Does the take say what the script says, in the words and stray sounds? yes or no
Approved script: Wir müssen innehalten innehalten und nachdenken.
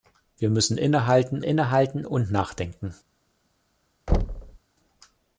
no